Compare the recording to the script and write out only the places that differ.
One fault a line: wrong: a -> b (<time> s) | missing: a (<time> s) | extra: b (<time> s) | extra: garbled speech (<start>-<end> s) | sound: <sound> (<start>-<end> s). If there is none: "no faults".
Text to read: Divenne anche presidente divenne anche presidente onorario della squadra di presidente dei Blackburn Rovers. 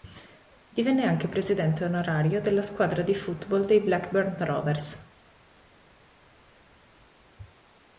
missing: divenne anche presidente (1.9 s)
wrong: presidente -> football (3.1 s)